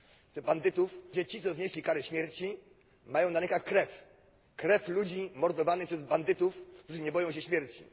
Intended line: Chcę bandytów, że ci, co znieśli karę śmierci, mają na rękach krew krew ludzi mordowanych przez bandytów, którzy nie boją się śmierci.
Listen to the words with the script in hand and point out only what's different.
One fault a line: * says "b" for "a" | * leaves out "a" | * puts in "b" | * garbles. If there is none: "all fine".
all fine